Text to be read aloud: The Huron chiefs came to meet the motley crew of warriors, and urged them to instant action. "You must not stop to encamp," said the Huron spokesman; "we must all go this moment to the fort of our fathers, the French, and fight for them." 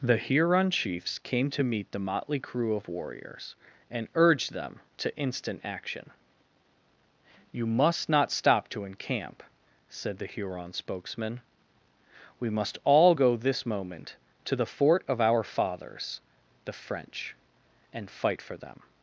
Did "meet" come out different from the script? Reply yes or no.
no